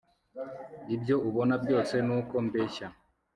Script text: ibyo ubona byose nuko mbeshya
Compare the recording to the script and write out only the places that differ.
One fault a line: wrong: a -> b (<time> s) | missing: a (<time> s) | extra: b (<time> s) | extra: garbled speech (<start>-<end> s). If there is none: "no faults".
no faults